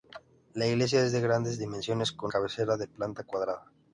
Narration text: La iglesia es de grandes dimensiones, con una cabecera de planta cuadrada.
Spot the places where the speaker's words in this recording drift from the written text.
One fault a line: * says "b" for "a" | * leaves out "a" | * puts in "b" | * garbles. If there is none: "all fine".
* leaves out "una"